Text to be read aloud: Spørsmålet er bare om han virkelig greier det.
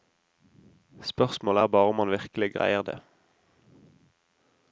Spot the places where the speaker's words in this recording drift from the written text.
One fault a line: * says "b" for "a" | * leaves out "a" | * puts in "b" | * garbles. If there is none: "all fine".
all fine